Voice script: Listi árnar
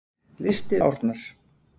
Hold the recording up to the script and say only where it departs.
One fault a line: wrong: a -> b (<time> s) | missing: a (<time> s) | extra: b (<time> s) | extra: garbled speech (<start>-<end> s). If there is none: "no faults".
no faults